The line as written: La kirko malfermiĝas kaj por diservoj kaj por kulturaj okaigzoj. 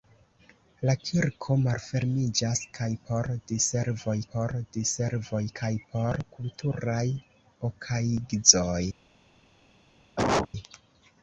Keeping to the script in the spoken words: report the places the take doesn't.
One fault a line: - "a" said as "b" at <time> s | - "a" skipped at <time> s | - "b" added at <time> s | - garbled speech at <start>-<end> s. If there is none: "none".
- "por diservoj" added at 4.3 s